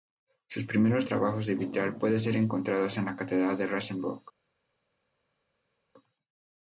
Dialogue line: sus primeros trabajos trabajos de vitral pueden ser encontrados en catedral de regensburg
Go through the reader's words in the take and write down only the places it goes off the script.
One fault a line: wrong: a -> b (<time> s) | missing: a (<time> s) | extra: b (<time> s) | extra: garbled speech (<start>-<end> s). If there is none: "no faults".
missing: trabajos (1.5 s)
extra: la (3.1 s)